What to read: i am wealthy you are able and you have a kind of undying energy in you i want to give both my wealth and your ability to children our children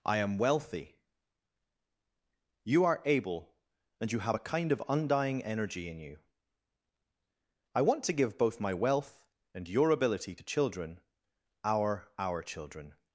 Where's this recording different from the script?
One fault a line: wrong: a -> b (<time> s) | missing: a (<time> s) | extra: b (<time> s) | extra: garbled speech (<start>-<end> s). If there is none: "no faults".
extra: our (12.2 s)